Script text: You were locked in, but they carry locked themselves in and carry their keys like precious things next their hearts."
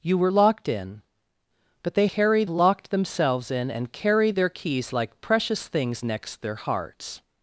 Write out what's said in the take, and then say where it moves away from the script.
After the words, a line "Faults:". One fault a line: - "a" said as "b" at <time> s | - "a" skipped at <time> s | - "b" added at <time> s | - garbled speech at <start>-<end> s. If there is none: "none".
You were locked in, but they carry locked themselves in and carry their keys like precious things next their hearts."
Faults:
none